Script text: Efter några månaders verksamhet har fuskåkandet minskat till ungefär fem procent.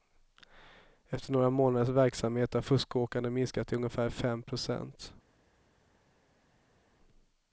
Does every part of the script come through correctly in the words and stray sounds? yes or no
yes